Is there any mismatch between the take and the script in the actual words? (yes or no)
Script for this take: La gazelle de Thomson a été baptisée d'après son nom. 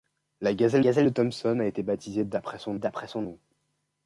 yes